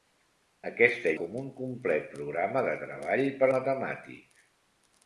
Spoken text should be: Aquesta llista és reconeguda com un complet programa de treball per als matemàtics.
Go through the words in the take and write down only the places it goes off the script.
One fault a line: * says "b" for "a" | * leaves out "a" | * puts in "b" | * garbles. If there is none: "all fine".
* leaves out "llista és reconeguda"
* leaves out "als"